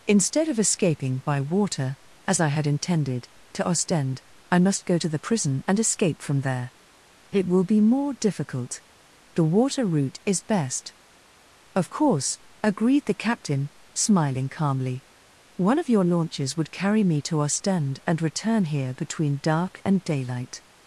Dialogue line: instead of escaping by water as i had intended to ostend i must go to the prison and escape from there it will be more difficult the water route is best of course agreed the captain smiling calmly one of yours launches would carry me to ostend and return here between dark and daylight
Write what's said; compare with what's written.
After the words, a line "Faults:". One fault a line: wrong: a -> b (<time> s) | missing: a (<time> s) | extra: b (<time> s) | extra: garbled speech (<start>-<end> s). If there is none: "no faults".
instead of escaping by water as i had intended to ostend i must go to the prison and escape from there it will be more difficult the water route is best of course agreed the captain smiling calmly one of your launches would carry me to ostend and return here between dark and daylight
Faults:
wrong: yours -> your (15.9 s)